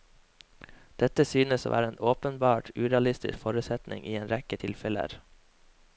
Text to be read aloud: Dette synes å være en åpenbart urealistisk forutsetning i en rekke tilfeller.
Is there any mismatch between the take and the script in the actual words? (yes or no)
no